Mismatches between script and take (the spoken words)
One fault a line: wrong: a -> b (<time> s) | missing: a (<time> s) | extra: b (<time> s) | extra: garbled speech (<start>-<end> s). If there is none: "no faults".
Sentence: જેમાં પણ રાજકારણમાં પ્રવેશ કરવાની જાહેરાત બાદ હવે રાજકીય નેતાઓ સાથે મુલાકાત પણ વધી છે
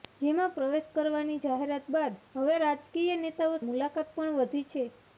missing: પણ રાજકારણમાં (0.5 s)
missing: સાથે (3.6 s)